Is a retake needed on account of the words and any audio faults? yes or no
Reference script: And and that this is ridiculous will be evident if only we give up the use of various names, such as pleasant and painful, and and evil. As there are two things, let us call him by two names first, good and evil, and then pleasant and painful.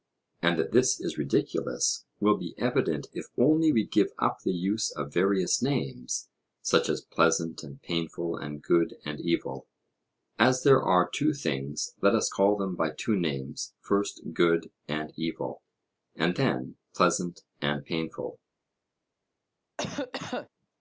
yes